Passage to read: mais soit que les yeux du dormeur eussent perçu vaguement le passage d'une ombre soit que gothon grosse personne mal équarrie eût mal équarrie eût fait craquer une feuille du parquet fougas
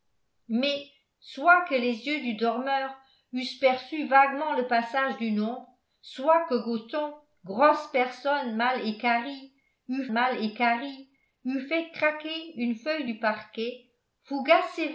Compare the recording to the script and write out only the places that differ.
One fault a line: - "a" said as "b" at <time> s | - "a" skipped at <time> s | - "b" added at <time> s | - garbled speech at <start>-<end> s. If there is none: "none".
none